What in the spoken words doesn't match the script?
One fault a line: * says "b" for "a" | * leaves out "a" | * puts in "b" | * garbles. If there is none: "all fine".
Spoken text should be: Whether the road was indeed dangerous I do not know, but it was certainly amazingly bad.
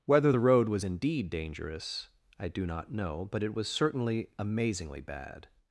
all fine